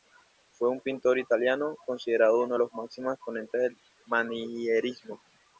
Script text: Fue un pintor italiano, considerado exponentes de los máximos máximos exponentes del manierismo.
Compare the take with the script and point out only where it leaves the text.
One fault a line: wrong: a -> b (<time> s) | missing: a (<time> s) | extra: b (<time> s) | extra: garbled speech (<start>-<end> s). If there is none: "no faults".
wrong: exponentes -> uno (2.4 s)
missing: máximos (3.1 s)